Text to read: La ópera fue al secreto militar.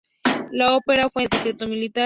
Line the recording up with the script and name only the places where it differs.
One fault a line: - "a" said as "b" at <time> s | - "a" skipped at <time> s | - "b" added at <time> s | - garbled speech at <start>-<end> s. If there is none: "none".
none